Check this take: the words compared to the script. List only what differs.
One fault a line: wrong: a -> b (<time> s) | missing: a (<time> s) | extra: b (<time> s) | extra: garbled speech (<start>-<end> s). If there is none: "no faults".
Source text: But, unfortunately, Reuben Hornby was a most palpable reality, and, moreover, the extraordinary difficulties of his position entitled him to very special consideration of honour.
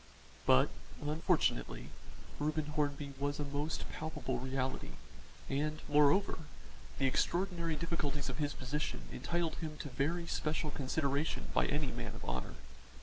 extra: by any man (11.5 s)